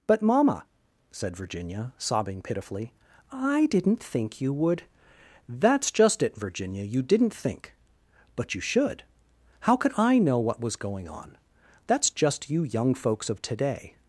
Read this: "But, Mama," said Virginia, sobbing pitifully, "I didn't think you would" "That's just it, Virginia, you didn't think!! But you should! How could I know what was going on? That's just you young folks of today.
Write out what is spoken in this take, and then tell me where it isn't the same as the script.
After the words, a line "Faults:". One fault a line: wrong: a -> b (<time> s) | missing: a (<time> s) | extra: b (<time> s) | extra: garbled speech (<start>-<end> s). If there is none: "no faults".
"But, Mama," said Virginia, sobbing pitifully, "I didn't think you would" "That's just it, Virginia, you didn't think!! But you should! How could I know what was going on? That's just you young folks of today.
Faults:
no faults